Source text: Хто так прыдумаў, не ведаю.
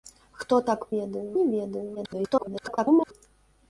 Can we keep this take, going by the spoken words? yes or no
no